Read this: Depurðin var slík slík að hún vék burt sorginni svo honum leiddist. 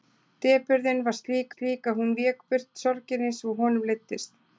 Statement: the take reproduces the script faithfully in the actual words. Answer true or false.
true